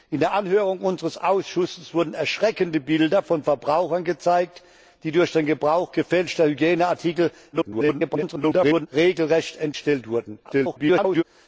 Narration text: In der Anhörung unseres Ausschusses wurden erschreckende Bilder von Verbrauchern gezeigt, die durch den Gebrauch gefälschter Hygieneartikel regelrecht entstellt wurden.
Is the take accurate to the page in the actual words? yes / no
no